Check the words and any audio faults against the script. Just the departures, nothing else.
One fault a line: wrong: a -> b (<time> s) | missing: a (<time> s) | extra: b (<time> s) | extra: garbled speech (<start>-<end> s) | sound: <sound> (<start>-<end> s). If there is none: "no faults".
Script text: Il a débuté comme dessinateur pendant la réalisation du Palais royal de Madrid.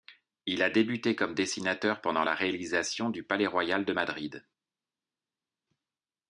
no faults